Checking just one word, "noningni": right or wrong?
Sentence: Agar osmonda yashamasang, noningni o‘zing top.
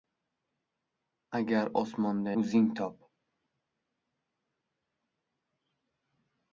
wrong